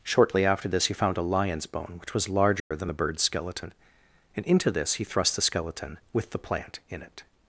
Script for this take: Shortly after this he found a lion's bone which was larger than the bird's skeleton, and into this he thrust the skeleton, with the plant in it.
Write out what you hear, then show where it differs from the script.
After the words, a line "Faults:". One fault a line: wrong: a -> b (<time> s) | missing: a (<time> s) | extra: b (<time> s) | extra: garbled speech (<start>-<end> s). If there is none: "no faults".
Shortly after this he found a lion's bone which was larger than the bird's skeleton, and into this he thrust the skeleton, with the plant in it.
Faults:
no faults